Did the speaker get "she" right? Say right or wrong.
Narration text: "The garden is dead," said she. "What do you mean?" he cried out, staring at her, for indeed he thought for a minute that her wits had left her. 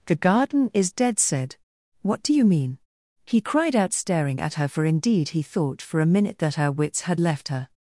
wrong